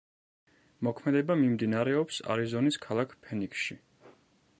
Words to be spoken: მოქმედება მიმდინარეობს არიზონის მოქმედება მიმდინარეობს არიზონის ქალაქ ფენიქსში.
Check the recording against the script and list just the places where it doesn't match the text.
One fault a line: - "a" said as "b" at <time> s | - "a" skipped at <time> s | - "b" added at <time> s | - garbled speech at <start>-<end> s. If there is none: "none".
- "მოქმედება მიმდინარეობს არიზონის" skipped at 2.8 s